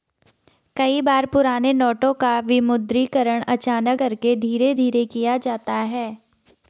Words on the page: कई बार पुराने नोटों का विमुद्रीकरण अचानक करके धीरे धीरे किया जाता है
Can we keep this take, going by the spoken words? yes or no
yes